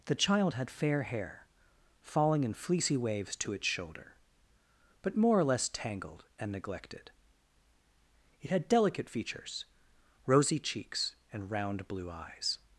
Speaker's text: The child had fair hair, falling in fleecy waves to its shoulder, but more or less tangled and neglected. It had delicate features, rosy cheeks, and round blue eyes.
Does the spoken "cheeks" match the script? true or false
true